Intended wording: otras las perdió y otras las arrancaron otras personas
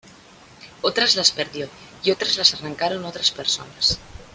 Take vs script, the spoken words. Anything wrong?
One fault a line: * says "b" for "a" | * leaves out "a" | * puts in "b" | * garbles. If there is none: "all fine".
all fine